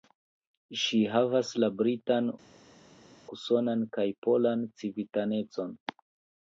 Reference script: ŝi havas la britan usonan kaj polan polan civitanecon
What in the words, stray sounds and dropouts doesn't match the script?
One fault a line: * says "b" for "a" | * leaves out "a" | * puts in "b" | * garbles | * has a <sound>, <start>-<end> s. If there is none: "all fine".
* leaves out "polan"